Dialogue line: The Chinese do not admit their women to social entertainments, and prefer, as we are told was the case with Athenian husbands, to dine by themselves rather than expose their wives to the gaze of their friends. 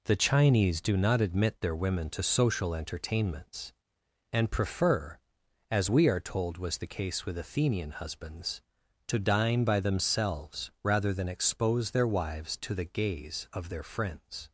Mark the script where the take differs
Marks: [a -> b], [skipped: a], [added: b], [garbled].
The Chinese do not admit their women to social entertainments, and prefer, as we are told was the case with Athenian husbands, to dine by themselves rather than expose their wives to the gaze of their friends.